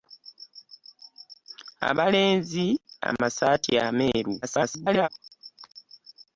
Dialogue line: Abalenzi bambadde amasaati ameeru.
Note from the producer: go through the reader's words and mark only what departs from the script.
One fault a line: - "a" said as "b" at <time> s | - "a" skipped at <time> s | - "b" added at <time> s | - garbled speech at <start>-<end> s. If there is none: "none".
- "bambadde" skipped at 2.6 s
- garbled speech at 4.4-5.1 s